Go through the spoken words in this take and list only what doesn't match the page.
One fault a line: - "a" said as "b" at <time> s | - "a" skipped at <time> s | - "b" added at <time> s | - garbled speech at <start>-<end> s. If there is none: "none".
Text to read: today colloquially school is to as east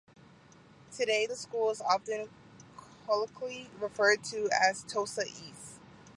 - "colloquially" said as "the" at 1.2 s
- "often colloquially referred" added at 1.8 s
- "tosa" added at 4.8 s